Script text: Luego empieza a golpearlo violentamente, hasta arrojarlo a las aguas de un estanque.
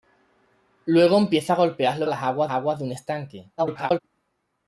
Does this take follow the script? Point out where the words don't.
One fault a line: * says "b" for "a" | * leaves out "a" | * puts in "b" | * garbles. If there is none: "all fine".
* leaves out "violentamente hasta arrojarlo"
* puts in "aguas"
* garbles